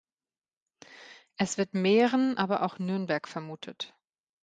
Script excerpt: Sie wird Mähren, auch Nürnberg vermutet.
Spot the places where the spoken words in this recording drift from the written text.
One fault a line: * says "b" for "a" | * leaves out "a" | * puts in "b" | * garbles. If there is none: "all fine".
* says "Es" for "Sie"
* puts in "aber"